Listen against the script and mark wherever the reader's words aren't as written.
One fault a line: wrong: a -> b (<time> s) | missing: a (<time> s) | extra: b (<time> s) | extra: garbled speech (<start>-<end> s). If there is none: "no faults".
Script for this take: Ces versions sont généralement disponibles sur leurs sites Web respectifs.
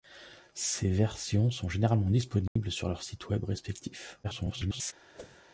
extra: garbled speech (4.2-4.9 s)